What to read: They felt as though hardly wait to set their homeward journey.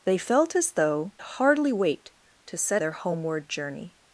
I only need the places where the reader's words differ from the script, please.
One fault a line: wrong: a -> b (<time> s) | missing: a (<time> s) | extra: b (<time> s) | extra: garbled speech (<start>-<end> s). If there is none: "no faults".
no faults